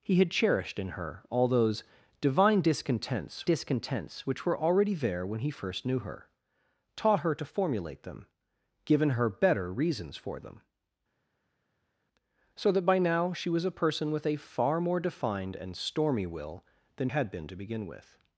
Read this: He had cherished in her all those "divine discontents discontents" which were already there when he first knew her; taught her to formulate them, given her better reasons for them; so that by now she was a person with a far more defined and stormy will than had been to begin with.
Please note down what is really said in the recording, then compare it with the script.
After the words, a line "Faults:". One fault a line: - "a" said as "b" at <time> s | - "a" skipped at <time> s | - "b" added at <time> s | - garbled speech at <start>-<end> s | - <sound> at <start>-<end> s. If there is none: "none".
He had cherished in her all those "divine discontents discontents" which were already there when he first knew her; taught her to formulate them, given her better reasons for them; so that by now she was a person with a far more defined and stormy will than had been to begin with.
Faults:
none